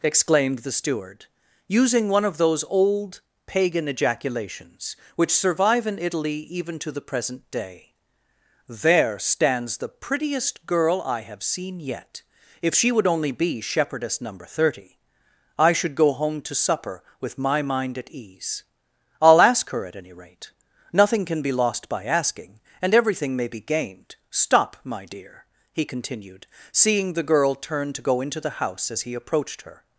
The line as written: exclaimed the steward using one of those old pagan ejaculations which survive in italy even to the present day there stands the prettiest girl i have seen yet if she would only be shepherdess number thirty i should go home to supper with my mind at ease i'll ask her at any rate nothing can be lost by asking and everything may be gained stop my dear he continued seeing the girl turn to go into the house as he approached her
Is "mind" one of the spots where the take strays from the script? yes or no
no